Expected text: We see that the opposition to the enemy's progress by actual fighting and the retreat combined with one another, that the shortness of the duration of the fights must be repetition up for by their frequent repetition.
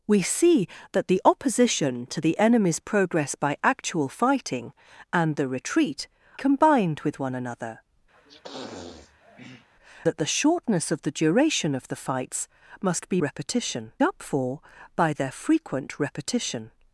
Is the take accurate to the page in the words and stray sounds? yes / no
no